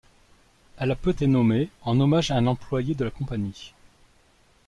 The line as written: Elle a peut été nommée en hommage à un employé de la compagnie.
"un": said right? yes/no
yes